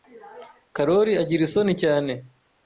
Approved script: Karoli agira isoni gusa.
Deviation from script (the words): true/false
true